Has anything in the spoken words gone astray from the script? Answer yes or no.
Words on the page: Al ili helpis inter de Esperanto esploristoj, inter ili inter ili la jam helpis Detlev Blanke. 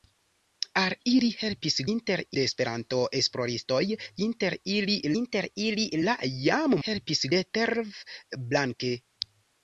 no